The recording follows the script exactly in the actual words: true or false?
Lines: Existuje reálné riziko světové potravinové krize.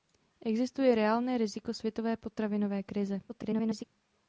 false